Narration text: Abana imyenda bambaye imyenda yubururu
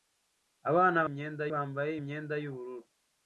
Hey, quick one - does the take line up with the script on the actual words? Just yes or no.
yes